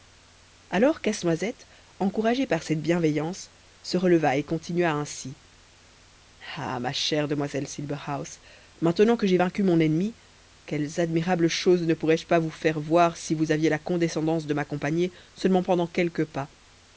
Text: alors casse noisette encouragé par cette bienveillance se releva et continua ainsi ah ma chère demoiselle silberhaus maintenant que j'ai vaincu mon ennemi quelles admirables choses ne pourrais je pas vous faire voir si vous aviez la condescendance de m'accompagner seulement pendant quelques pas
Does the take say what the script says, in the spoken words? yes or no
yes